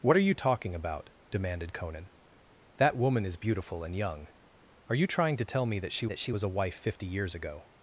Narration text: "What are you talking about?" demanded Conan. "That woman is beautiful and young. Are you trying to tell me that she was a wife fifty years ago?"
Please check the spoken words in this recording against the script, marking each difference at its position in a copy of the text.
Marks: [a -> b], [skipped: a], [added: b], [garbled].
"What are you talking about?" demanded Conan. "That woman is beautiful and young. Are you trying to tell me that she [added: that she] was a wife fifty years ago?"